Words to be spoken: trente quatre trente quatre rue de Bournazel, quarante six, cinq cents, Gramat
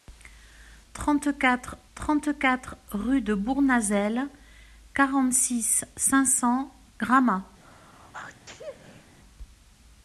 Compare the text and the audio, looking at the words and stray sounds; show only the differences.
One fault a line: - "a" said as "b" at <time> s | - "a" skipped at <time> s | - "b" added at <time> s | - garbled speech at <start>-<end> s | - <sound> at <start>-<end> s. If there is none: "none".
- sneeze at 7.6-9.2 s